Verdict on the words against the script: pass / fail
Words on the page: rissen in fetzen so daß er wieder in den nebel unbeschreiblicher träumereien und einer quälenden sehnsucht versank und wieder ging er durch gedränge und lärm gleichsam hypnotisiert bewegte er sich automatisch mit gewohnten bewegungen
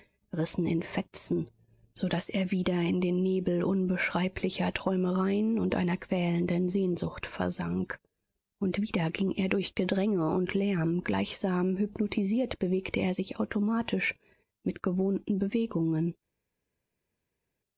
pass